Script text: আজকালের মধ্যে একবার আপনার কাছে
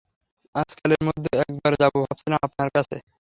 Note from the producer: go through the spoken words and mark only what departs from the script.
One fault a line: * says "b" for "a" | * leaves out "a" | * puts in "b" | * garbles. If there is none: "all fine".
* puts in "যাব ভাবছিলাম"